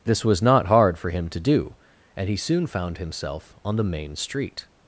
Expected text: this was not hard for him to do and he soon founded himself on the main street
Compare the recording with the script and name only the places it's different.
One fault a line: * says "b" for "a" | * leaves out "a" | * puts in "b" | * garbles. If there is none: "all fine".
* says "found" for "founded"